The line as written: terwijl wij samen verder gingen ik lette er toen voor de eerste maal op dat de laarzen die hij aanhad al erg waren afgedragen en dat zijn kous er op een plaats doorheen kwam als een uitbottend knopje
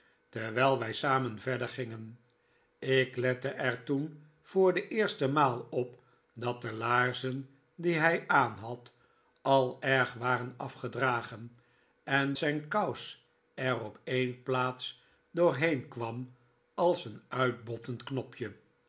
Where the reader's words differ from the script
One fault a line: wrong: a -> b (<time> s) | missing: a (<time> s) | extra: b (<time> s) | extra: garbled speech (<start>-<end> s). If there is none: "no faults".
missing: dat (12.3 s)